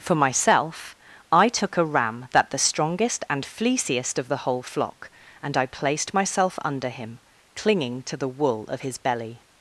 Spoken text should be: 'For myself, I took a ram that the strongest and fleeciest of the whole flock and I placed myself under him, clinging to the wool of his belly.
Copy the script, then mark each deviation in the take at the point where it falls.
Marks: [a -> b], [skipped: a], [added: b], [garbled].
'For myself, I took a ram that the strongest and fleeciest of the whole flock and I placed myself under him, clinging to the wool of his belly.